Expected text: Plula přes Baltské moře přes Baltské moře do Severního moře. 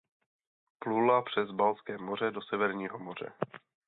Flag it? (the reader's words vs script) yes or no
yes